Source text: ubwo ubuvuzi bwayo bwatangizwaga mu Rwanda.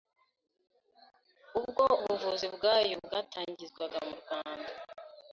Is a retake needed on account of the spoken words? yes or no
no